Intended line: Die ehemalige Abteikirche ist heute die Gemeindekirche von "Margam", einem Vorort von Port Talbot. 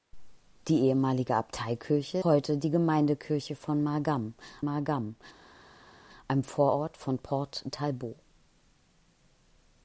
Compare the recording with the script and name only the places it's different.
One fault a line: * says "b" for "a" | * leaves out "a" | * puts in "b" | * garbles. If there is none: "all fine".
* leaves out "ist"
* puts in "margam"